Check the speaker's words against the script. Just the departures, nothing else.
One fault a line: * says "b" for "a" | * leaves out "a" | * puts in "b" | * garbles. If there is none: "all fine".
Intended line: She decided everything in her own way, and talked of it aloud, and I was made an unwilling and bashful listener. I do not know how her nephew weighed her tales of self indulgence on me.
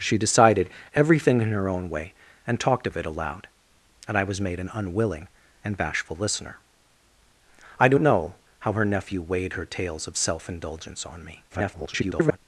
* leaves out "not"
* garbles